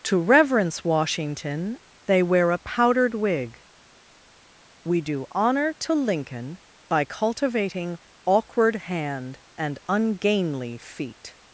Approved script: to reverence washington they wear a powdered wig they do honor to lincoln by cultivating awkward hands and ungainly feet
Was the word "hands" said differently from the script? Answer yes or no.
yes